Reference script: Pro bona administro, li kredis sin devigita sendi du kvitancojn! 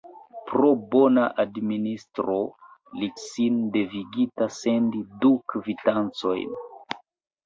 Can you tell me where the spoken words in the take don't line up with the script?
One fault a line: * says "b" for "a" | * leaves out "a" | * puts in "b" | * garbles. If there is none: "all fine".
* leaves out "kredis"